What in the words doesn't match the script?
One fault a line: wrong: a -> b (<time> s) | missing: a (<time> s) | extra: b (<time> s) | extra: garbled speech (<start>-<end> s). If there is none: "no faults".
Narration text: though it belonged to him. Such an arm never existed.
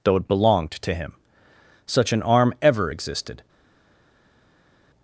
wrong: never -> ever (2.6 s)